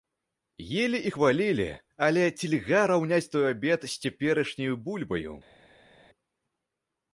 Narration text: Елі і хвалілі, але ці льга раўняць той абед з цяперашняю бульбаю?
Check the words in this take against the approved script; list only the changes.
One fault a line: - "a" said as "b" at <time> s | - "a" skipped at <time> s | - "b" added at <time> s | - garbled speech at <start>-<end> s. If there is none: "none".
none